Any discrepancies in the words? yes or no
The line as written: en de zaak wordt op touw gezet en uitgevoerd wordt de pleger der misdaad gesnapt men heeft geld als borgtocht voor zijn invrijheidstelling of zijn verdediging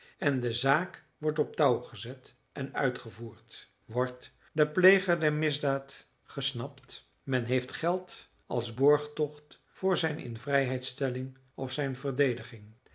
no